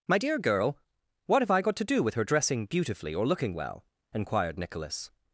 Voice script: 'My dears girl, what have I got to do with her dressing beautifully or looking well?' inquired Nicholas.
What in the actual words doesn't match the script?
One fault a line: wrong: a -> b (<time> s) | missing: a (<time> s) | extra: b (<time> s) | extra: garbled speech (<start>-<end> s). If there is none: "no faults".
wrong: dears -> dear (0.2 s)